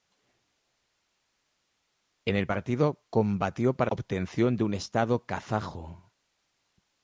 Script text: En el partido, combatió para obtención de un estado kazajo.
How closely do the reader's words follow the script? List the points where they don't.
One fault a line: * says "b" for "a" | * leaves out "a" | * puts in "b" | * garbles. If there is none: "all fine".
all fine